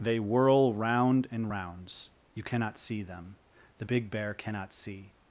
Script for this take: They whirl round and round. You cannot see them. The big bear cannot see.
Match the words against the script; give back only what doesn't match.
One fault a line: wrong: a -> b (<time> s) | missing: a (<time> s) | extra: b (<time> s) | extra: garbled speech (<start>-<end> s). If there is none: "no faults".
wrong: round -> rounds (1.5 s)